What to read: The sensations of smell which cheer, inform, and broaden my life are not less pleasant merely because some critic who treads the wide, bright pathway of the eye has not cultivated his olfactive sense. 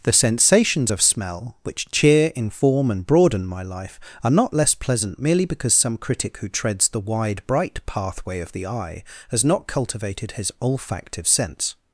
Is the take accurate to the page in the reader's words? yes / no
yes